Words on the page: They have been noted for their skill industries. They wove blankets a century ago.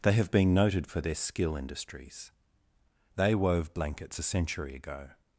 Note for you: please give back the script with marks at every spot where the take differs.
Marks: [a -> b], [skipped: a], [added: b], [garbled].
They have been noted for their skill industries. They wove blankets a century ago.